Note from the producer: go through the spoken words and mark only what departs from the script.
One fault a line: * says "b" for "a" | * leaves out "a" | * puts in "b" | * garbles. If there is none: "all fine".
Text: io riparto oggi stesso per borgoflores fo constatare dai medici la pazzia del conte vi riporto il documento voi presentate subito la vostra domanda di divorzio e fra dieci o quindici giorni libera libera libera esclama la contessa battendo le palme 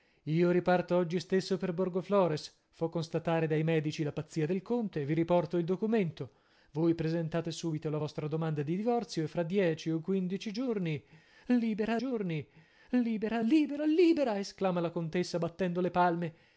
* puts in "giorni libera"